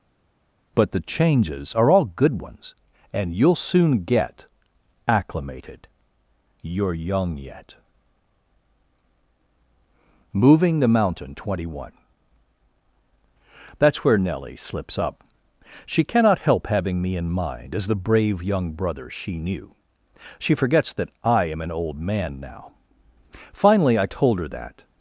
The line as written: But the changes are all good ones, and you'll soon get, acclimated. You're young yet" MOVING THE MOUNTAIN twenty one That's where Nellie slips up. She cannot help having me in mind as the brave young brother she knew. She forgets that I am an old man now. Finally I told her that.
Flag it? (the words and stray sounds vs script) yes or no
no